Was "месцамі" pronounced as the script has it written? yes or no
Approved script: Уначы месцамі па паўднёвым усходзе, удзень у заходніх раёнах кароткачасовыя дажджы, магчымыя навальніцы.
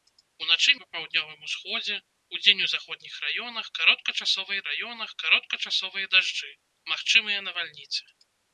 no